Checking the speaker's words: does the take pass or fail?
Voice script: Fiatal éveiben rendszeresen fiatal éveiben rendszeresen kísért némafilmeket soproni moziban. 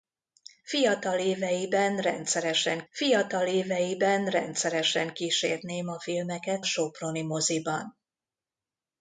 pass